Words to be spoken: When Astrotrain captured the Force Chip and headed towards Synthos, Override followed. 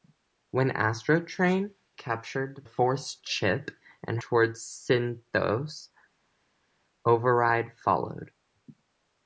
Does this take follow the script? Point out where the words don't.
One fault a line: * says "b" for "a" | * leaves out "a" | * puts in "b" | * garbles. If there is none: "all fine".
* leaves out "the"
* leaves out "headed"